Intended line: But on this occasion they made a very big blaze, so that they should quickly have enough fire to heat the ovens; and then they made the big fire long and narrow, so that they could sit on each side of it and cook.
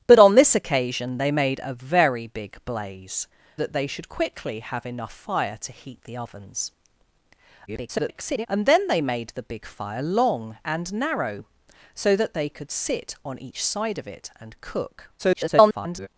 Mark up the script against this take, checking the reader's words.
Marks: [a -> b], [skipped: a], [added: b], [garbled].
But on this occasion they made a very big blaze, [skipped: so] that they should quickly have enough fire to heat the ovens; [garbled] and then they made the big fire long and narrow, so that they could sit on each side of it and cook. [garbled]